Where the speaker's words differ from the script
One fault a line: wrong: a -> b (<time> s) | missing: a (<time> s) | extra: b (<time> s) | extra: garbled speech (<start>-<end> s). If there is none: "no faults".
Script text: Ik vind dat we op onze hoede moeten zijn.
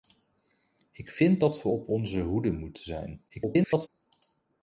extra: garbled speech (3.3-3.9 s)